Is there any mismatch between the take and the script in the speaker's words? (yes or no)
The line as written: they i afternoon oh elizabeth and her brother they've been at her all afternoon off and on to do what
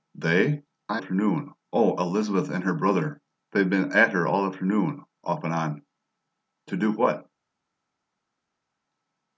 no